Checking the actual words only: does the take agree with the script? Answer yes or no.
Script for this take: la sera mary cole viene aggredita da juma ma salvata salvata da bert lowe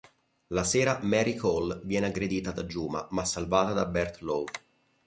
no